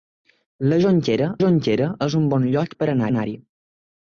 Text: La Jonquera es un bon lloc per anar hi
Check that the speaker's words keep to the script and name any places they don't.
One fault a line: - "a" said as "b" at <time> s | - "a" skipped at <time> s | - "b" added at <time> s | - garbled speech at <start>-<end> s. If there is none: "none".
- "Jonquera" added at 1.4 s
- "anar" added at 3.1 s